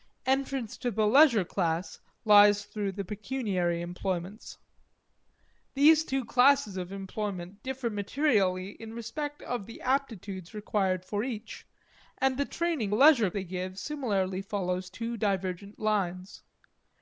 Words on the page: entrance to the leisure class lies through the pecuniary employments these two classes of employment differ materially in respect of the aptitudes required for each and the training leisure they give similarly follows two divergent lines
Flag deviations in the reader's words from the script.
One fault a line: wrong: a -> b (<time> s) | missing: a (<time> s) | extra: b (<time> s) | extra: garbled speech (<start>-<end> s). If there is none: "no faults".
no faults